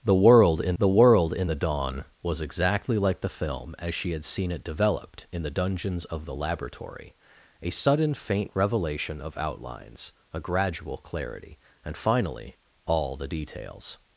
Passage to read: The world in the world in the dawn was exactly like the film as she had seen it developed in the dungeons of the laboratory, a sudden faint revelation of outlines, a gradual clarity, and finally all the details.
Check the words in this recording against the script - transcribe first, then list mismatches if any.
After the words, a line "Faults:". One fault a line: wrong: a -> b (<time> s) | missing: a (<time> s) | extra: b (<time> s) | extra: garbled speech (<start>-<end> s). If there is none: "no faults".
The world in the world in the dawn was exactly like the film as she had seen it developed in the dungeons of the laboratory, a sudden faint revelation of outlines, a gradual clarity, and finally all the details.
Faults:
no faults